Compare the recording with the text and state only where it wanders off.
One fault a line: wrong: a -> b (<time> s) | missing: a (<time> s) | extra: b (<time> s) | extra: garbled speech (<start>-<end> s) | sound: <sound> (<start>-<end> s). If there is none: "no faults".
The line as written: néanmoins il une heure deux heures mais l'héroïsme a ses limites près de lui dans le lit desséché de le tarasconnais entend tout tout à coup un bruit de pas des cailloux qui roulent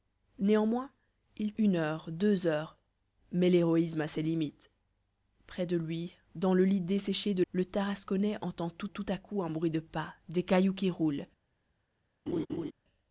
sound: laugh (12.3-12.7 s)